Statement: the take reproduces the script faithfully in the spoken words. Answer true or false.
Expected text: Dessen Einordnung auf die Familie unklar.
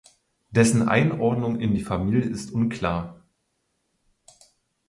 false